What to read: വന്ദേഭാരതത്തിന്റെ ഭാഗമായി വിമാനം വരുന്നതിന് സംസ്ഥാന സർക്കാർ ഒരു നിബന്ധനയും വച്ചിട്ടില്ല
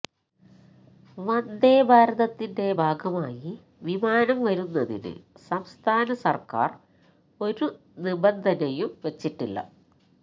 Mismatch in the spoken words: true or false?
false